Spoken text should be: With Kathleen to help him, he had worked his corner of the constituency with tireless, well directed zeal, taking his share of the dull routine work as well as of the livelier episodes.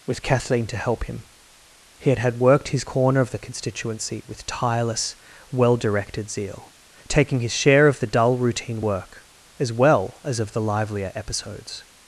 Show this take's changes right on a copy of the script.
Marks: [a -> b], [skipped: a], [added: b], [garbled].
With Kathleen to help him, he had [added: had] worked his corner of the constituency with tireless, well directed zeal, taking his share of the dull routine work as well as of the livelier episodes.